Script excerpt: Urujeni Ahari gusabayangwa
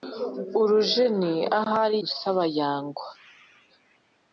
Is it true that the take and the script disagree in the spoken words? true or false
false